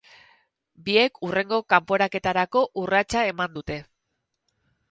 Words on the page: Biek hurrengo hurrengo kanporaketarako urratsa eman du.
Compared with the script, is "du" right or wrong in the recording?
wrong